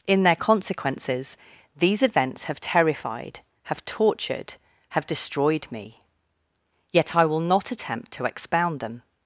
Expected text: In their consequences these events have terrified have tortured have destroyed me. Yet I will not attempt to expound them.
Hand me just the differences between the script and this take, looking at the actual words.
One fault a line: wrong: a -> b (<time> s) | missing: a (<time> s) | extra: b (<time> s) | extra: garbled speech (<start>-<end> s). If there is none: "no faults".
no faults